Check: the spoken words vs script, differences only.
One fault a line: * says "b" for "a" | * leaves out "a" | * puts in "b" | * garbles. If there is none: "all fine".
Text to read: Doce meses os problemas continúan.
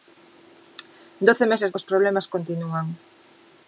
all fine